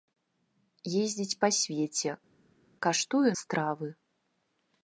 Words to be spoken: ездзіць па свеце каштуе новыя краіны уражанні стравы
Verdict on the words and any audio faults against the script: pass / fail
fail